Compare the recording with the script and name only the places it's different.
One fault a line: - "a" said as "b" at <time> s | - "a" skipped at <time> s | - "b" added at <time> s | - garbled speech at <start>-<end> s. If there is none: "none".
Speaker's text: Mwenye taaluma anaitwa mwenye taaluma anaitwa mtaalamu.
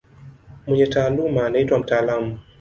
- "mwenye taaluma anaitwa" skipped at 1.8 s